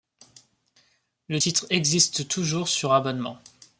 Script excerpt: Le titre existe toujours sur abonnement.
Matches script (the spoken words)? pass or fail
pass